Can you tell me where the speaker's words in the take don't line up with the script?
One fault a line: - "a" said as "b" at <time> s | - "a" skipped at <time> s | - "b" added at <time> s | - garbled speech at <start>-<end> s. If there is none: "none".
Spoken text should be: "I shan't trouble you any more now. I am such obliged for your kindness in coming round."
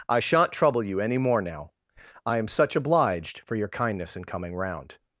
none